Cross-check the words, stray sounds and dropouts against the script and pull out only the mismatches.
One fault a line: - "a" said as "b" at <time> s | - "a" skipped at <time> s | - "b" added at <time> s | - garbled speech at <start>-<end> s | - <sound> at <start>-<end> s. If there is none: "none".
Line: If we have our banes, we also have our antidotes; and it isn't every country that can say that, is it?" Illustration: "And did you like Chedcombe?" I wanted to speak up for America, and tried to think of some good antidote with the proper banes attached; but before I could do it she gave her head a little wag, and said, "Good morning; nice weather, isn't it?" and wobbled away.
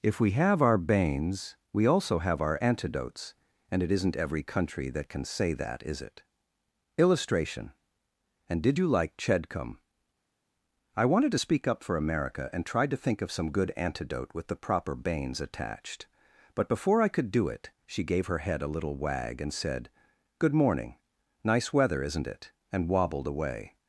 none